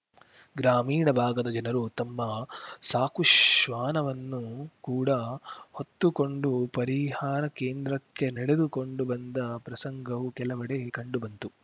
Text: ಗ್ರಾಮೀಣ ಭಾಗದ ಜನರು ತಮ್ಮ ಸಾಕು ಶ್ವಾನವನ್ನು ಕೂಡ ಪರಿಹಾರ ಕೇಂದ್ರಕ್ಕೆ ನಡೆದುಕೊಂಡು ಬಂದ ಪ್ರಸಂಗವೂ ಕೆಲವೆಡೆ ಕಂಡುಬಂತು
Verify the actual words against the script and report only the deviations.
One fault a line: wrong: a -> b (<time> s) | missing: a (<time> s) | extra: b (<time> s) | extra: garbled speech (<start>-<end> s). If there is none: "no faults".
extra: ಹೊತ್ತುಕೊಂಡು (5.7 s)